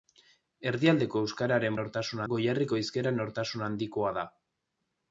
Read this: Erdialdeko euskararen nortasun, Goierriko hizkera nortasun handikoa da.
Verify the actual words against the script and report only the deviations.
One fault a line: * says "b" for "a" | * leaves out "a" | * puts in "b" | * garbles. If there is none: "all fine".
all fine